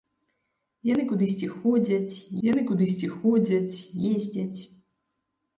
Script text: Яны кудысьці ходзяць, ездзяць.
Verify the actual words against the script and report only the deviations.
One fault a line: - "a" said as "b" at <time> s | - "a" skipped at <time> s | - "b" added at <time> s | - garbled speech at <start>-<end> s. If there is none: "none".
- "яны кудысьці ходзяць" added at 2.5 s